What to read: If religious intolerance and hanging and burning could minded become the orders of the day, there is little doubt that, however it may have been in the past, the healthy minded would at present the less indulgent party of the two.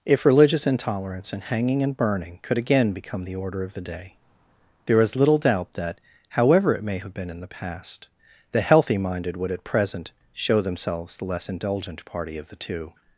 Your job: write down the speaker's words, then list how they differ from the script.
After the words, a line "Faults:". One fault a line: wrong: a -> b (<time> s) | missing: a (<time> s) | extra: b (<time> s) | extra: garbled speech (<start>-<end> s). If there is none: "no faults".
If religious intolerance and hanging and burning could again become the order of the day, there is little doubt that, however it may have been in the past, the healthy minded would at present show themselves the less indulgent party of the two.
Faults:
wrong: minded -> again (2.6 s)
wrong: orders -> order (3.4 s)
extra: show themselves (10.3 s)